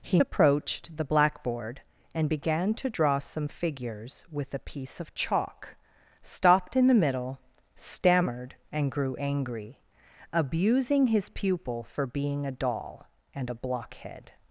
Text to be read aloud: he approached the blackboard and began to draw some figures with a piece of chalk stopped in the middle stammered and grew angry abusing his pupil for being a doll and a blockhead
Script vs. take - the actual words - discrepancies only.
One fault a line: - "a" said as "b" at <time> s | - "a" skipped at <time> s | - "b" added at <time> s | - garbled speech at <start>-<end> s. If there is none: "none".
none